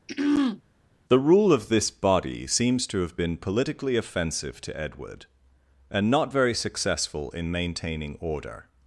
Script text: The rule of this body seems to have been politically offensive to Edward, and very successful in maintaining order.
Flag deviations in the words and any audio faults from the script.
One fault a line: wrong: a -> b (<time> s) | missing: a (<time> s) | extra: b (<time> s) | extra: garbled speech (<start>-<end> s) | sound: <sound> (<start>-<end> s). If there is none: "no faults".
sound: throat clearing (0.1-0.6 s)
extra: not (6.1 s)